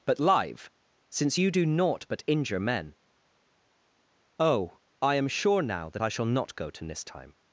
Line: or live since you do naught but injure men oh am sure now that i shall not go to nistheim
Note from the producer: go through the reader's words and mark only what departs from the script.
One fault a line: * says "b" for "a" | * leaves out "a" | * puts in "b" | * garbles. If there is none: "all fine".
* says "but" for "or"
* puts in "i"